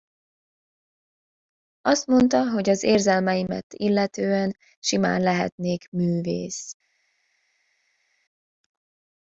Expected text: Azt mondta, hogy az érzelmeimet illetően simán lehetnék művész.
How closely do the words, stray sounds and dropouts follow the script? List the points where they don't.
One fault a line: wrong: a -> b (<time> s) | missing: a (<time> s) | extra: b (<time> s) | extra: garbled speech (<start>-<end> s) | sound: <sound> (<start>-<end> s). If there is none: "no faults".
no faults